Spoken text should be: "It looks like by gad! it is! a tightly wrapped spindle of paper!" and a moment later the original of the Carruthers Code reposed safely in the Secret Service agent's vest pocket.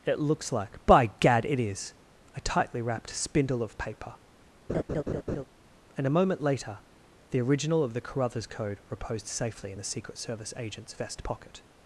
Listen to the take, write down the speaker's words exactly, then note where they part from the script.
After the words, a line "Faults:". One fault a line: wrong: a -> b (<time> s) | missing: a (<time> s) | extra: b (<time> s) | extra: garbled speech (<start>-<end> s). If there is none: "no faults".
"It looks like by gad! it is! a tightly wrapped spindle of paper!" and a moment later the original of the Carruthers Code reposed safely in the Secret Service agent's vest pocket.
Faults:
no faults